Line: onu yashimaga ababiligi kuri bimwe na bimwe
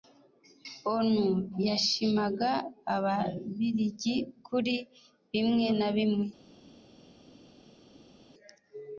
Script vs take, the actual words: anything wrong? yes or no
no